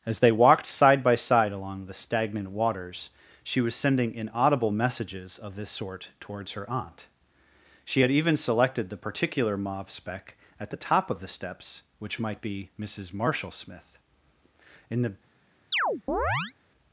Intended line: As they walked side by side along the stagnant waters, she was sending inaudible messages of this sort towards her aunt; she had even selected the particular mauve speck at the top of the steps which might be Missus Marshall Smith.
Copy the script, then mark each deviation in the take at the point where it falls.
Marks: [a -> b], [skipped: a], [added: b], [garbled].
As they walked side by side along the stagnant waters, she was sending inaudible messages of this sort towards her aunt; she had even selected the particular mauve speck at the top of the steps which might be Missus Marshall Smith. [added: In the]